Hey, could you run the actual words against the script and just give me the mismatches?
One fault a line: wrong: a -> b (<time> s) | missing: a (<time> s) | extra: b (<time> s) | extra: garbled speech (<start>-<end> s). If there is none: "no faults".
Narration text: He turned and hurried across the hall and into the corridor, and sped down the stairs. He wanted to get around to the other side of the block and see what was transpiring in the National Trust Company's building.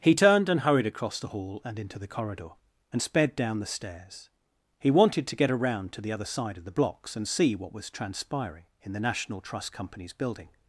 wrong: block -> blocks (6.7 s)